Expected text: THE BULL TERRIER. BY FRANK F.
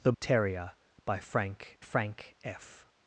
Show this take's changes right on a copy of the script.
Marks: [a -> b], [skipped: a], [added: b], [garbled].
THE [skipped: BULL] TERRIER. BY FRANK [added: FRANK] F.